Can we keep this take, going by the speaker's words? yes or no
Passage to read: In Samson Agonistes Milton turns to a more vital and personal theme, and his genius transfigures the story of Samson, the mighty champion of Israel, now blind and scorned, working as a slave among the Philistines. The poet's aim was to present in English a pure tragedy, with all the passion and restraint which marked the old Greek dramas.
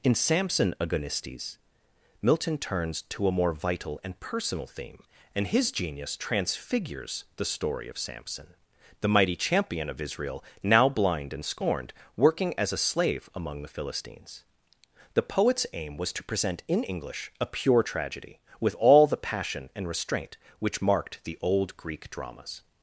yes